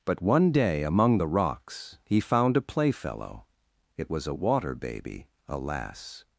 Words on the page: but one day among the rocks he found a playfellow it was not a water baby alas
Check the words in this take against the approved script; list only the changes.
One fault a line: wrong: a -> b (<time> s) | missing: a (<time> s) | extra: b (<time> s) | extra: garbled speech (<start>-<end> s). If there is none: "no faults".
missing: not (4.3 s)